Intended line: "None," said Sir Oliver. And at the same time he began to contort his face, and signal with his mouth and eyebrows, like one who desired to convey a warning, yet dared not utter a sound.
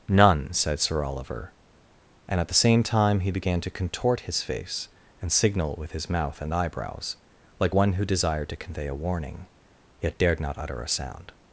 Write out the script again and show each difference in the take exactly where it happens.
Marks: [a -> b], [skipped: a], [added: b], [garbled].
"None," said Sir Oliver. And at the same time he began to contort his face, and signal with his mouth and eyebrows, like one who desired to convey a warning, yet dared not utter a sound.